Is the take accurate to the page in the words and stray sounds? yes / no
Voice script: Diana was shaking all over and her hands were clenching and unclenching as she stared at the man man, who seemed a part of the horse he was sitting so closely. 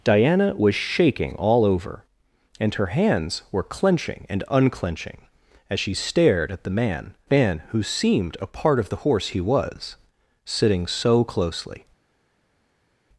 yes